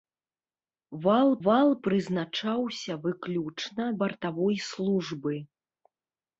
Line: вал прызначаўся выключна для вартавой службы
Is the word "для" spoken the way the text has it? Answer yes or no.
no